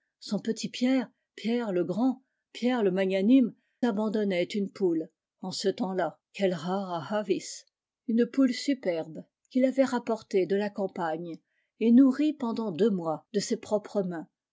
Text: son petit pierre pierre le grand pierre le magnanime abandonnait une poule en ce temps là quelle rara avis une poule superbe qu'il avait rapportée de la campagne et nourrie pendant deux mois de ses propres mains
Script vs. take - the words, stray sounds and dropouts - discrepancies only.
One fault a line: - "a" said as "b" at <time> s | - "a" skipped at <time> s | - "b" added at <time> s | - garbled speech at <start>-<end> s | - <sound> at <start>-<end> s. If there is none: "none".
none